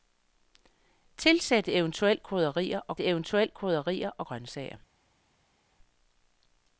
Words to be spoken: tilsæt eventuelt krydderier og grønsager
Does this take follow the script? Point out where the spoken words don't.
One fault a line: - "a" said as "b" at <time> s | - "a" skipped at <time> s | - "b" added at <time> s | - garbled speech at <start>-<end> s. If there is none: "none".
- "eventuelt krydderier og" added at 3.0 s